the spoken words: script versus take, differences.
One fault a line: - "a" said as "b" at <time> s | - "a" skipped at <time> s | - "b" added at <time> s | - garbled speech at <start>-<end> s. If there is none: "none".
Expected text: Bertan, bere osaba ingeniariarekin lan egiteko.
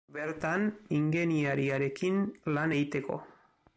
- "bere osaba" skipped at 0.6 s